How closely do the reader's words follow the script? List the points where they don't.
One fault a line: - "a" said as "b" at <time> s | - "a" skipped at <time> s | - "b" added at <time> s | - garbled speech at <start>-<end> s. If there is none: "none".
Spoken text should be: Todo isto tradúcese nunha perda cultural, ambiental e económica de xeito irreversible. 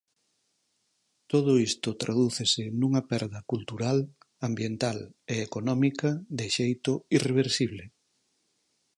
none